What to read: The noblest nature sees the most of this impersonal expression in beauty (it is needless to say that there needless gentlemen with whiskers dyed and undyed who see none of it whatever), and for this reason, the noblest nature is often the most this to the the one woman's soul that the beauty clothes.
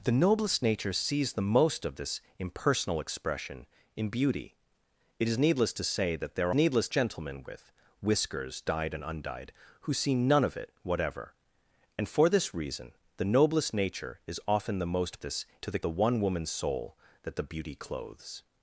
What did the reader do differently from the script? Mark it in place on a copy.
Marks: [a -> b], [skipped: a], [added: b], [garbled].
The noblest nature sees the most of this impersonal expression in beauty (it is needless to say that there needless gentlemen with whiskers dyed and undyed who see none of it whatever), and for this reason, the noblest nature is often the most this to the the one woman's soul that the beauty clothes.